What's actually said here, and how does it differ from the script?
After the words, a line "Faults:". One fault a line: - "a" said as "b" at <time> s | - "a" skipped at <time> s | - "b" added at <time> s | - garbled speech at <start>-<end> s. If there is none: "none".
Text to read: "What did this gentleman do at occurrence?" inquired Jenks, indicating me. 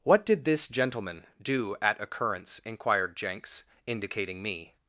"What did this gentleman do at occurrence?" inquired Jenks, indicating me.
Faults:
none